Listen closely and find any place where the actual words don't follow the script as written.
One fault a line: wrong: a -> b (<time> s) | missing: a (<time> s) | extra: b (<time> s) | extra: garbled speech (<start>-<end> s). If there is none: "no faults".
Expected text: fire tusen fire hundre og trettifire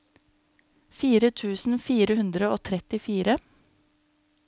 no faults